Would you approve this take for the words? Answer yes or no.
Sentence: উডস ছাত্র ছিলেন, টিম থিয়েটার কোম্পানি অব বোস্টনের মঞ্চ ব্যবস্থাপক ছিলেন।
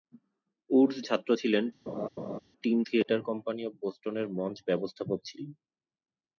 yes